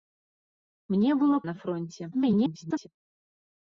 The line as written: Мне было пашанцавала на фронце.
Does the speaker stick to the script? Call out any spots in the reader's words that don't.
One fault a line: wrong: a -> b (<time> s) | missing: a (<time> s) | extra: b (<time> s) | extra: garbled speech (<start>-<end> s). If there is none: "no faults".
missing: пашанцавала (1.4 s)
extra: garbled speech (2.1-2.9 s)